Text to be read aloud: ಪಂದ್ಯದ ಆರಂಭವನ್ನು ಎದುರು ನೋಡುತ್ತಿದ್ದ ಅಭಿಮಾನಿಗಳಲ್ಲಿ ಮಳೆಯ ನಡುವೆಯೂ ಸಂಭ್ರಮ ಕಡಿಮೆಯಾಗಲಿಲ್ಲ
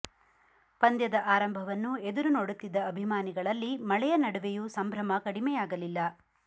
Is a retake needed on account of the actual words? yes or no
no